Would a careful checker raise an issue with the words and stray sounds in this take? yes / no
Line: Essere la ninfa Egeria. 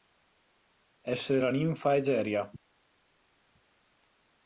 no